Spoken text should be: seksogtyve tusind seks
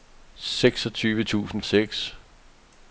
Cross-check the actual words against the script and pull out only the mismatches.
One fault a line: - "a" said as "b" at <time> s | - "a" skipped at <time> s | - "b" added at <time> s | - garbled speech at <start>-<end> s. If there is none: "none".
none